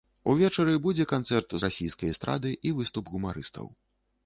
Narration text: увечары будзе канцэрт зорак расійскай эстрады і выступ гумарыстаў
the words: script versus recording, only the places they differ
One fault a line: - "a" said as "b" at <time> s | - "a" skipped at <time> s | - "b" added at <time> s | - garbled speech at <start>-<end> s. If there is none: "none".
- "зорак" skipped at 1.5 s